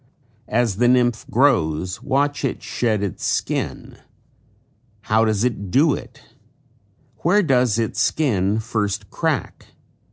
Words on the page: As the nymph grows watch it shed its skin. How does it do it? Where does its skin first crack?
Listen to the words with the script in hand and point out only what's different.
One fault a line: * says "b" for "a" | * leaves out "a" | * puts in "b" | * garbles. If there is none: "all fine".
all fine